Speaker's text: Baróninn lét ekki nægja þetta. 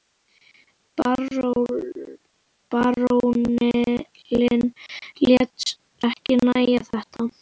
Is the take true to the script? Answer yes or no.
yes